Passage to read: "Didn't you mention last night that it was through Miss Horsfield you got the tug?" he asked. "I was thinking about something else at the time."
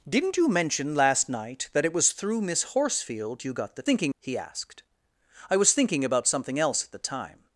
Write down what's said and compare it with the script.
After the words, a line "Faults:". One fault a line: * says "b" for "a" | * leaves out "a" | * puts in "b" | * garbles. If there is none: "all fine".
"Didn't you mention last night that it was through Miss Horsfield you got the thinking?" he asked. "I was thinking about something else at the time."
Faults:
* says "thinking" for "tug"